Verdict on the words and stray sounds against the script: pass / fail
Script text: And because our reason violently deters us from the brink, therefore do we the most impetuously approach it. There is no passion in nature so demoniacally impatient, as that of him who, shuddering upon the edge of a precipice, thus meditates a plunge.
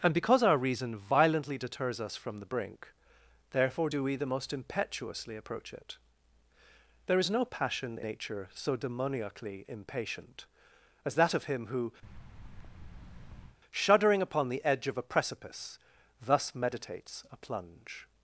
fail